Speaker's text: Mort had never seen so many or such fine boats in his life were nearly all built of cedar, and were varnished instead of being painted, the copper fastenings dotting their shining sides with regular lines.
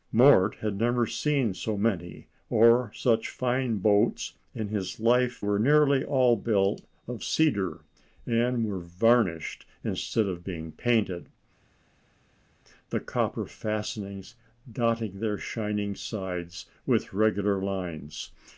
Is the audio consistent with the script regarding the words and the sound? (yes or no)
yes